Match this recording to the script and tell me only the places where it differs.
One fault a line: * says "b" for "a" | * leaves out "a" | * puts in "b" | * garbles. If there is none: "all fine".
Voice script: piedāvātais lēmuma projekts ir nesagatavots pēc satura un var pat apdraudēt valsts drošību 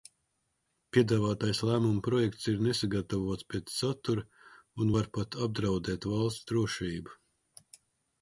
all fine